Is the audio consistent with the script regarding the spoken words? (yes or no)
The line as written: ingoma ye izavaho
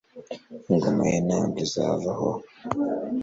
no